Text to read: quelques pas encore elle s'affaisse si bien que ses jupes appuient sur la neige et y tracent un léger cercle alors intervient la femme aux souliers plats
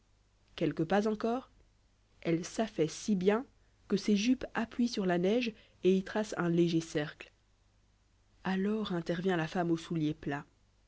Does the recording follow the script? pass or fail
pass